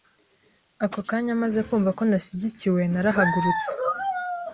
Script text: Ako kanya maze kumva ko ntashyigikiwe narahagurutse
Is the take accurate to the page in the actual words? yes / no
yes